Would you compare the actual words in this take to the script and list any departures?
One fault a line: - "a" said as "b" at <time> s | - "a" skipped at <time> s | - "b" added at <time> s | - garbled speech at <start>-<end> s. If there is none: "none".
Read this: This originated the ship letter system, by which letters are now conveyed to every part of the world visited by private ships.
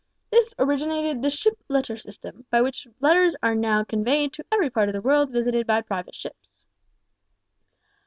none